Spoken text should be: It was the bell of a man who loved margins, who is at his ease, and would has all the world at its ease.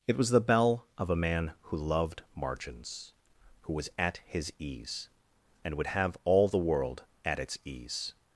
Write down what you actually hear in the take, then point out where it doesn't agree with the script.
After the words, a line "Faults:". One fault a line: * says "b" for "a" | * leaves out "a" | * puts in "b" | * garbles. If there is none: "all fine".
It was the bell of a man who loved margins, who was at his ease, and would have all the world at its ease.
Faults:
* says "was" for "is"
* says "have" for "has"